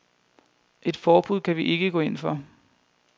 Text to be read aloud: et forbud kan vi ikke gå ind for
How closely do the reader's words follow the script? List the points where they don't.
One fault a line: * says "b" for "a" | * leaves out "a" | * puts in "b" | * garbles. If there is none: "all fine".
all fine